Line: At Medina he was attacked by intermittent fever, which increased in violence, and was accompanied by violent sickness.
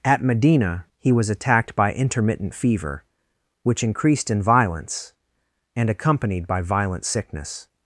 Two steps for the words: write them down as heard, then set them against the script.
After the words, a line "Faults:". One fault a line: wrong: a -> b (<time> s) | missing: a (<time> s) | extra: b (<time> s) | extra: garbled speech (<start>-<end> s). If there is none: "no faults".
At Medina he was attacked by intermittent fever, which increased in violence, and accompanied by violent sickness.
Faults:
missing: was (5.9 s)